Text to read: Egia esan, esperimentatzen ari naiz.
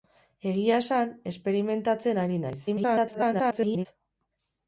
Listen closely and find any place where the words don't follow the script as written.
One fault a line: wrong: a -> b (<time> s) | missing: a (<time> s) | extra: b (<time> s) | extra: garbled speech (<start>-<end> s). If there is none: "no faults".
extra: garbled speech (2.7-3.9 s)